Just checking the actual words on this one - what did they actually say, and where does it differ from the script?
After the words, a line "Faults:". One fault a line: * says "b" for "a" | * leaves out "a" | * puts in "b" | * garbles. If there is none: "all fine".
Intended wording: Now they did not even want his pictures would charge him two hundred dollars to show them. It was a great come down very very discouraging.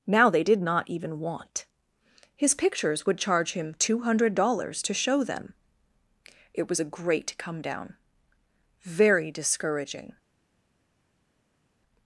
Now they did not even want his pictures would charge him two hundred dollars to show them. It was a great come down very discouraging.
Faults:
* leaves out "very"